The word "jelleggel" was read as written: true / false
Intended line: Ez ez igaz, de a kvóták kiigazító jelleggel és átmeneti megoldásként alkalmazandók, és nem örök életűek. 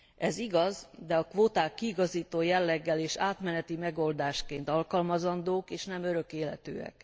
true